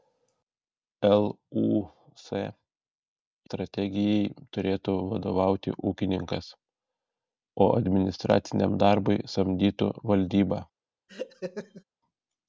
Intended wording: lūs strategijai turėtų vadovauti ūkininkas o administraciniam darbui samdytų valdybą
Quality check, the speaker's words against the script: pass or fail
pass